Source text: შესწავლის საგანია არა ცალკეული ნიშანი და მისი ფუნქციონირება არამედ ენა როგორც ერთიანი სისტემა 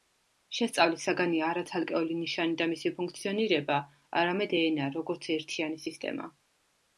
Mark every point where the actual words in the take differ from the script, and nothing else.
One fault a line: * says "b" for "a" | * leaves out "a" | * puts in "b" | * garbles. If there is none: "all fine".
all fine